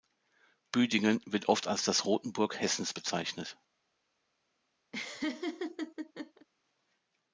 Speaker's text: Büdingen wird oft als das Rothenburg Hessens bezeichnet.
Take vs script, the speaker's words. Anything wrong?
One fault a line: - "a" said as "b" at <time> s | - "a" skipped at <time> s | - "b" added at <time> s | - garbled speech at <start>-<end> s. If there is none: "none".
none